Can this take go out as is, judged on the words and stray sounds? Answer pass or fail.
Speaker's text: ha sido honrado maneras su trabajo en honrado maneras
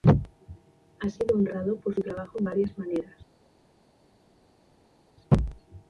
fail